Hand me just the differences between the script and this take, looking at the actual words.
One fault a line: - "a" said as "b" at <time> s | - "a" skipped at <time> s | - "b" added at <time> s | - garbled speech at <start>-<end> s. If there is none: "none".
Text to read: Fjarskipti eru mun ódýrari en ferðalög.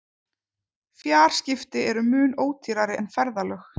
none